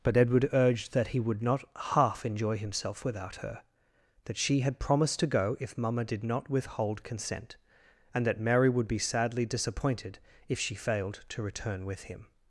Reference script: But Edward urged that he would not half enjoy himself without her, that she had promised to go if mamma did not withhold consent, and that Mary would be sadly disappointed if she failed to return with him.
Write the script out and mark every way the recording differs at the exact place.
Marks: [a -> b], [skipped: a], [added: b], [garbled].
But Edward urged that he would not half enjoy himself without her, that she had promised to go if mamma did not withhold consent, and that Mary would be sadly disappointed if she failed to return with him.